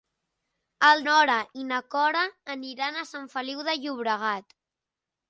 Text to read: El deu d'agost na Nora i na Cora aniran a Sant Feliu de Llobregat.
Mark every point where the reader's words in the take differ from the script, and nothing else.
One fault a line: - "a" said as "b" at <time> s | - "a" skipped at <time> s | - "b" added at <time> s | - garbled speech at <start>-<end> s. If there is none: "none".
- "deu d'agost na" skipped at 1.0 s